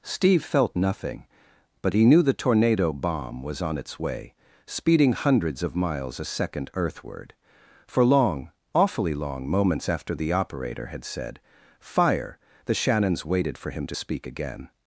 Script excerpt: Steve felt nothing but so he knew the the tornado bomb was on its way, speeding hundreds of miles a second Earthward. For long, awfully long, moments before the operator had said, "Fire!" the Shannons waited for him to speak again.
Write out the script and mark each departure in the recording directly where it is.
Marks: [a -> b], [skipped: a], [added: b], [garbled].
Steve felt nothing but [skipped: so] he knew the [skipped: the] tornado bomb was on its way, speeding hundreds of miles a second Earthward. For long, awfully long, moments [before -> after] the operator had said, "Fire!" the Shannons waited for him to speak again.